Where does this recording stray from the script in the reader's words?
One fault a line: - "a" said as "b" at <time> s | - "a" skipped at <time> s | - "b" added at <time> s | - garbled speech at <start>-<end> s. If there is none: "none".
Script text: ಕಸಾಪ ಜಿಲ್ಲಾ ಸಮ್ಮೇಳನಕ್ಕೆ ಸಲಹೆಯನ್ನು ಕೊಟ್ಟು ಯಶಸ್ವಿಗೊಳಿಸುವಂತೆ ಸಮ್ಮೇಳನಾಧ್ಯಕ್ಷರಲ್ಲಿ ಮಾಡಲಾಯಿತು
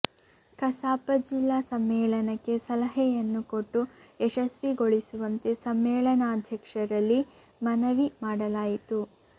- "ಮನವಿ" added at 7.6 s